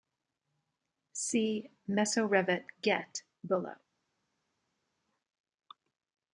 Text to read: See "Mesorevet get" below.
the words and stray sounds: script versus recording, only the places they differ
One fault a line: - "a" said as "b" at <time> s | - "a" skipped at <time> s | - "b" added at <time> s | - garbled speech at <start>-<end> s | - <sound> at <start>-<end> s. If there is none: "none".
none